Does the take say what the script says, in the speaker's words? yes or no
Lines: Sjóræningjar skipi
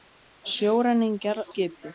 yes